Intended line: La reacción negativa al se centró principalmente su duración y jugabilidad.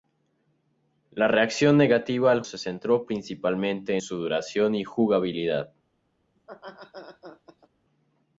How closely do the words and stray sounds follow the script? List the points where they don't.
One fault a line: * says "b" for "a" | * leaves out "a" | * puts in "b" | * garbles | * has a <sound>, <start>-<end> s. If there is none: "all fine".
* has a laugh, 6.4-7.7 s